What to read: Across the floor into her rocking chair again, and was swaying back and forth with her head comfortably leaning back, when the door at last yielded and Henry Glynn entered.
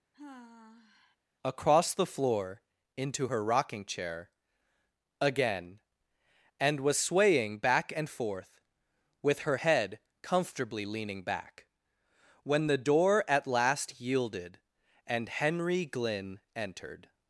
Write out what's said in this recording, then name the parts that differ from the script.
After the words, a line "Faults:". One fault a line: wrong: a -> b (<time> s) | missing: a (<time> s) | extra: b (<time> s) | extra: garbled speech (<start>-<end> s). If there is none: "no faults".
Across the floor into her rocking chair again, and was swaying back and forth with her head comfortably leaning back, when the door at last yielded and Henry Glynn entered.
Faults:
no faults